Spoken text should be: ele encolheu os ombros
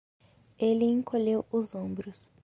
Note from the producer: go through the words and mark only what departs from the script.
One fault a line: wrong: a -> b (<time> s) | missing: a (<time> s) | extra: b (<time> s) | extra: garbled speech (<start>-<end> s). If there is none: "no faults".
no faults